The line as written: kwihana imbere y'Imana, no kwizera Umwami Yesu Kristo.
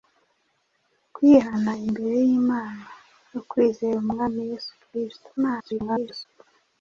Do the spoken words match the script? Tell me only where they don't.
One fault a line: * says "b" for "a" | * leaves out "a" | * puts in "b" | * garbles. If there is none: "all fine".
* garbles